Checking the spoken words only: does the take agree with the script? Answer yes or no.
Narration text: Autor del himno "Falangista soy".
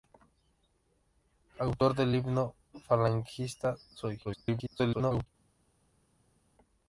no